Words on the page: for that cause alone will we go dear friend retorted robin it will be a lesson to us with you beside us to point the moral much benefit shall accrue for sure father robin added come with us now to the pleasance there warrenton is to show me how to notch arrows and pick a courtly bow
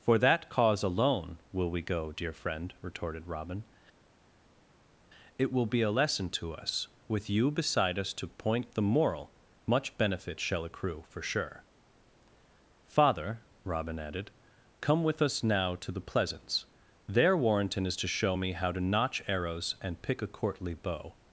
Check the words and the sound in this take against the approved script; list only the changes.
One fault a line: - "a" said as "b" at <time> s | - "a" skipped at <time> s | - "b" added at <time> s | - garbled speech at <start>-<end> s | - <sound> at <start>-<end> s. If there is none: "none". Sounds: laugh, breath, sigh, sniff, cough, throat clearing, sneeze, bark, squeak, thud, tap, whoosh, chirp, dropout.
none